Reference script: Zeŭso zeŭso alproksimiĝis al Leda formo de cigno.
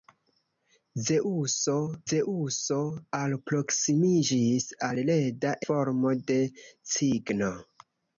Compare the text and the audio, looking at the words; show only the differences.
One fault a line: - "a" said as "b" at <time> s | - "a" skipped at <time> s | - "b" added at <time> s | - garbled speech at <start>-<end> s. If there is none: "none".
none